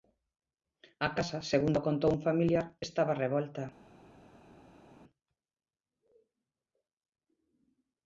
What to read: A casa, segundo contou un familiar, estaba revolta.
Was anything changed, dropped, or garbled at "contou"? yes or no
no